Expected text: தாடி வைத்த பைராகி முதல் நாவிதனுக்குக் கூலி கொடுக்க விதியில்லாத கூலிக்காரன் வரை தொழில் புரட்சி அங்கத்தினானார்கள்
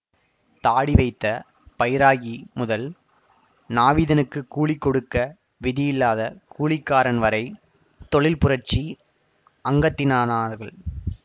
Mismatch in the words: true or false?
false